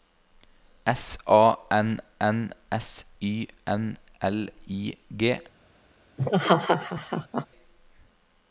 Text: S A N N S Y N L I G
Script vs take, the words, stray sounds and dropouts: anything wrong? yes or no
yes